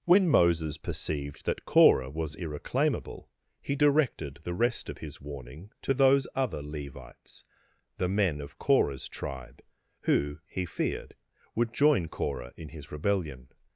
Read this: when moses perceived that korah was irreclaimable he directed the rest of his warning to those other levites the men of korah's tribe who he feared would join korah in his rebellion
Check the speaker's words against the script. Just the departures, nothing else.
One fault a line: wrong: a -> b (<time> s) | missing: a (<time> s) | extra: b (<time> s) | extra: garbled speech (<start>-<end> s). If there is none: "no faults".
no faults